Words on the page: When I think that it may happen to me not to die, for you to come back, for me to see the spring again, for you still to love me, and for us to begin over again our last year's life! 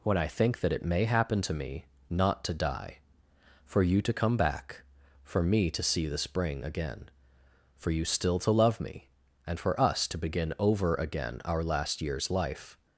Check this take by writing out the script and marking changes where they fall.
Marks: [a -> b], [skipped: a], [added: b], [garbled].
When I think that it may happen to me not to die, for you to come back, for me to see the spring again, for you still to love me, and for us to begin over again our last year's life!